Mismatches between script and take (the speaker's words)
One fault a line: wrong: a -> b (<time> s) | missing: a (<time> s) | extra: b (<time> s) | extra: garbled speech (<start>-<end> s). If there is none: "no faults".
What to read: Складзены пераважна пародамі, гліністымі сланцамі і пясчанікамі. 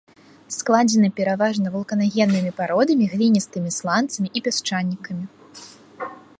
extra: вулканагеннымі (1.8 s)